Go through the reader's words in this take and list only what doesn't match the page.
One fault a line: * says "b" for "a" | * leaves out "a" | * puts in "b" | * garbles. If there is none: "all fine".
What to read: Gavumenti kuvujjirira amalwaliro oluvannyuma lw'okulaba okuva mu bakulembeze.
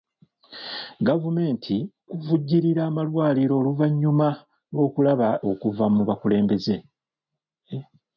all fine